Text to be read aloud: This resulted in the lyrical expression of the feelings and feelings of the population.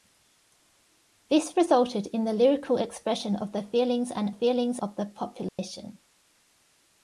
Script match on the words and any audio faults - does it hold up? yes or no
no